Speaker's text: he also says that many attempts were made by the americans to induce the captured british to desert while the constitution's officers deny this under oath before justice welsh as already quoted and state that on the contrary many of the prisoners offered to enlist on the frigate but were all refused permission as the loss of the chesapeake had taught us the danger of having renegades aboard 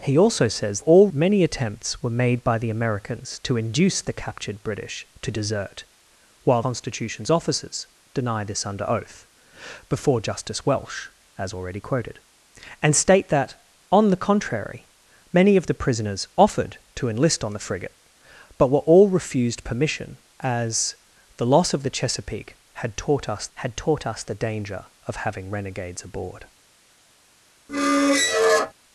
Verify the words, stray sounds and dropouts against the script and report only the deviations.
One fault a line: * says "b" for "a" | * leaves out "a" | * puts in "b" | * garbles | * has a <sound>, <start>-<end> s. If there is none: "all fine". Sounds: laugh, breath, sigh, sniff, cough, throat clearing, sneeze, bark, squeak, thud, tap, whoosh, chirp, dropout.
* says "all" for "that"
* leaves out "the"
* puts in "had taught us"
* has a squeak, 27.7-28.7 s